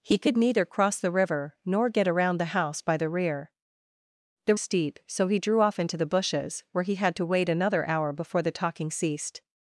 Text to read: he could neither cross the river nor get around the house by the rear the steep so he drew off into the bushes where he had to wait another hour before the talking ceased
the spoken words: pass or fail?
pass